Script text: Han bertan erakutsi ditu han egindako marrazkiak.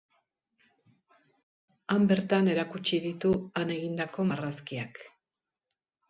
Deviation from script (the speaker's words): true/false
false